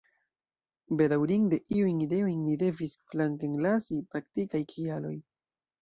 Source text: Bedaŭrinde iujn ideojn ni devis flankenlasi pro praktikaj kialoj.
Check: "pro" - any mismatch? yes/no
yes